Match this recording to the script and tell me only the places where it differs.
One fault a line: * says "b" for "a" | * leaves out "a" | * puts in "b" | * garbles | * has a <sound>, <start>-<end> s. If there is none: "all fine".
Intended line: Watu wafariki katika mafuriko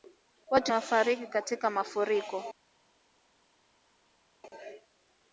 all fine